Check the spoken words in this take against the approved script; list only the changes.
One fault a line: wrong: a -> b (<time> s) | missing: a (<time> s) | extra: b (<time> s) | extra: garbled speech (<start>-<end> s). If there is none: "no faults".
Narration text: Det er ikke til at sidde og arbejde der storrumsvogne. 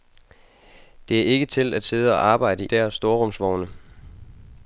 no faults